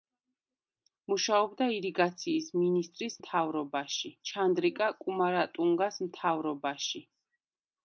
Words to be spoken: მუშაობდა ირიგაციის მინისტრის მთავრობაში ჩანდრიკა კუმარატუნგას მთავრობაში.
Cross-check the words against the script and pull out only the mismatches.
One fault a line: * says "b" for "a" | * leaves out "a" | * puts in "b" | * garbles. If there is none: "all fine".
all fine